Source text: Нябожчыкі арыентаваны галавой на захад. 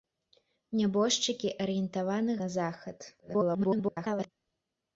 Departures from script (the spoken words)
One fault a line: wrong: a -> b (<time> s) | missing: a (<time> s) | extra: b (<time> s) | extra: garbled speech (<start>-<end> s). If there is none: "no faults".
missing: галавой (2.3 s)
extra: garbled speech (3.2-4.3 s)